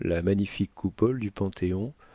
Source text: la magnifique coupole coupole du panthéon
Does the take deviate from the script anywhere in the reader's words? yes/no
yes